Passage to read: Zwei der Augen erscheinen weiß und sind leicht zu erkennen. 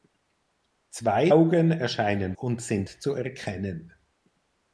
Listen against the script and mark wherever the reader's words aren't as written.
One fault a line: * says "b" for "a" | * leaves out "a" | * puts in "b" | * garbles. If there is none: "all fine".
* leaves out "der"
* leaves out "weiß"
* leaves out "leicht"